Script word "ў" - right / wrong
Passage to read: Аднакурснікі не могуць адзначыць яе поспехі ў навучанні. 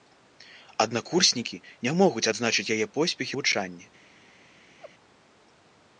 wrong